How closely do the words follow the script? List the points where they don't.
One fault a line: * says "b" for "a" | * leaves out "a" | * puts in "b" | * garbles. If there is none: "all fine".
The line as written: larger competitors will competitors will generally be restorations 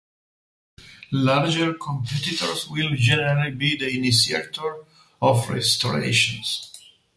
* says "generally be the initiator of" for "competitors will generally be"